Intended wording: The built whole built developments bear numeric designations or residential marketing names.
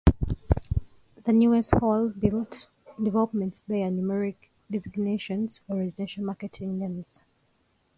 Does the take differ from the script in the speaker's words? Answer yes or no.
yes